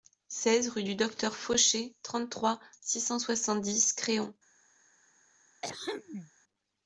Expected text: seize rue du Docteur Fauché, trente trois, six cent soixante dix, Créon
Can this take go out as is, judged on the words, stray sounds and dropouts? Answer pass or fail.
fail